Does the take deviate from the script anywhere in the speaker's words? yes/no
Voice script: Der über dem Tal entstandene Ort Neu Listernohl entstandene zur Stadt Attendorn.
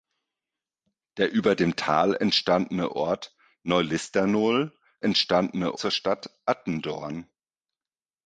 no